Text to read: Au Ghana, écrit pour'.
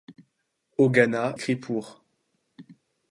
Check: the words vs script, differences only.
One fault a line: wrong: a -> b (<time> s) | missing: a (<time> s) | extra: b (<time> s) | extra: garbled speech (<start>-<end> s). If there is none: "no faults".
no faults